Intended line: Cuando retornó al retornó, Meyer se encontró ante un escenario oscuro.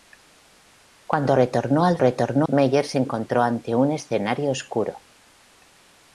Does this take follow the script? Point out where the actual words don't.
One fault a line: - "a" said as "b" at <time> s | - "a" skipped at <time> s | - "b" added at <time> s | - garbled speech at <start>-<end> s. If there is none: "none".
none